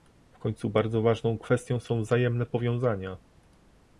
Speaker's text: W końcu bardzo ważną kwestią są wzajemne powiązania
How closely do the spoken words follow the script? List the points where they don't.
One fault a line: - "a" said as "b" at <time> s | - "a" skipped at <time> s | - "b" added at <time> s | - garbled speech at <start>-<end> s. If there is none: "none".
none